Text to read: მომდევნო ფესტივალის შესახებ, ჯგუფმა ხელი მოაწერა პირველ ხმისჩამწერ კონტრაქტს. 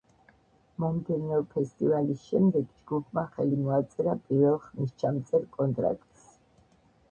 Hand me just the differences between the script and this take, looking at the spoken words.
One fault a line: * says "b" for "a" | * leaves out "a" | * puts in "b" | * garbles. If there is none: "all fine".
* says "შემდეგ" for "შესახებ"